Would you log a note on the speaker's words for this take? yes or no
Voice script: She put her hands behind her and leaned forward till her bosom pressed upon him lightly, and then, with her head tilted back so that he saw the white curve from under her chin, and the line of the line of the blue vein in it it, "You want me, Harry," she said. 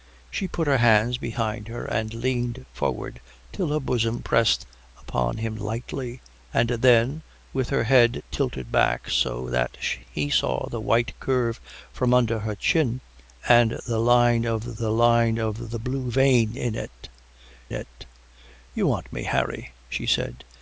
no